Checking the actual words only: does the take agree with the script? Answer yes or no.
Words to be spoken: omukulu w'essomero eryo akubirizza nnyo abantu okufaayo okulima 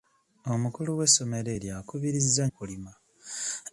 no